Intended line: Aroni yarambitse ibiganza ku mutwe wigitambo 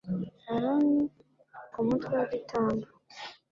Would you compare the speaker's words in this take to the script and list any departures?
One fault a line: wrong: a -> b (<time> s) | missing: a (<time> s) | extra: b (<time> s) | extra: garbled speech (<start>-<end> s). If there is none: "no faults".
missing: yarambitse ibiganza (1.0 s)